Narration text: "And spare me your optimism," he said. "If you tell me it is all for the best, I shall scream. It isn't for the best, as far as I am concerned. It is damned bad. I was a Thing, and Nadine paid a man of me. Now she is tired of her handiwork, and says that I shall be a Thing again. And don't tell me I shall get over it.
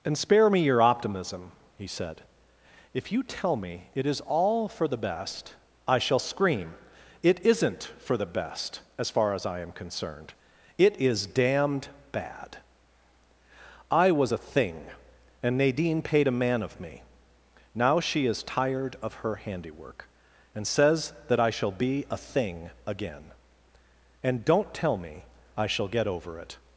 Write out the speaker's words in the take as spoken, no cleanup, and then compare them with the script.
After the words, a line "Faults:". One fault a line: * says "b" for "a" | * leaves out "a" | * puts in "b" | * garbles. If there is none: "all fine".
"And spare me your optimism," he said. "If you tell me it is all for the best, I shall scream. It isn't for the best, as far as I am concerned. It is damned bad. I was a Thing, and Nadine paid a man of me. Now she is tired of her handiwork, and says that I shall be a Thing again. And don't tell me I shall get over it.
Faults:
all fine